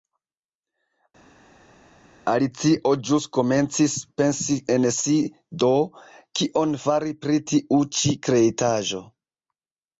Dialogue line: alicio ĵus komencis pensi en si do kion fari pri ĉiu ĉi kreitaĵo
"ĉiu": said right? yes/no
no